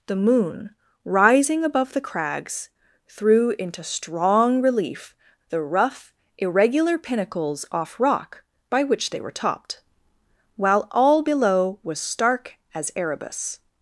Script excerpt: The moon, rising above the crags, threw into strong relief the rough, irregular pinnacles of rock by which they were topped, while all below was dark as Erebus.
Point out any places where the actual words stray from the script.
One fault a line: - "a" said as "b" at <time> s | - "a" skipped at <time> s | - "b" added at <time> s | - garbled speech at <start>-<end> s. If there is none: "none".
- "of" said as "off" at 7.7 s
- "dark" said as "stark" at 12.0 s